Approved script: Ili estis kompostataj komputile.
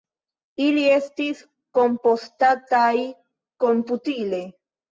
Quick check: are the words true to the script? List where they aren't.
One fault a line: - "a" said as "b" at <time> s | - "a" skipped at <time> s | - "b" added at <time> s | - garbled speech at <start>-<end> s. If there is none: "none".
none